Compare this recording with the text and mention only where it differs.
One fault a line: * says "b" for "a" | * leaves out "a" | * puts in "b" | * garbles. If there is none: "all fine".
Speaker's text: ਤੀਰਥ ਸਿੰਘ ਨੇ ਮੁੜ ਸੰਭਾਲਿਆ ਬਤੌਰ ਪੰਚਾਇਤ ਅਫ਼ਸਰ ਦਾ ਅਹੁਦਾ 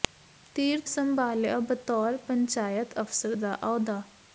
* leaves out "ਸਿੰਘ ਨੇ ਮੁੜ"